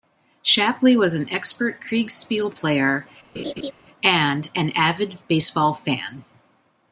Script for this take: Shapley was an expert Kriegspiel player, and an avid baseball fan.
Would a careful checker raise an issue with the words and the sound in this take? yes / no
yes